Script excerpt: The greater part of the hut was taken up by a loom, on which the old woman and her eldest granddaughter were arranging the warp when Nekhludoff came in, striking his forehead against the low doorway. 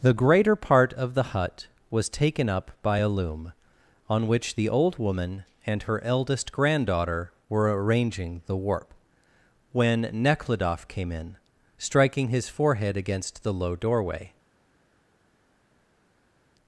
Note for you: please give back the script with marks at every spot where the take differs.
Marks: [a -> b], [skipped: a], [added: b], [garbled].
The greater part of the hut was taken up by a loom, on which the old woman and her eldest granddaughter were arranging the warp when Nekhludoff came in, striking his forehead against the low doorway.